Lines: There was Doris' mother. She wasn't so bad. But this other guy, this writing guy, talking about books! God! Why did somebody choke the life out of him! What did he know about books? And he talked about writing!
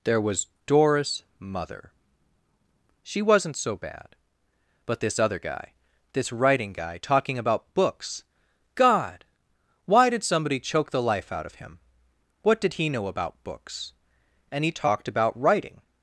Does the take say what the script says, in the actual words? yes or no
yes